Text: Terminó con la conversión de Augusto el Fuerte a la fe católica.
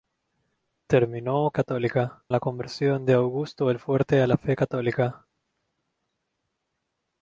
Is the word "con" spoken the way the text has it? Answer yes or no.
no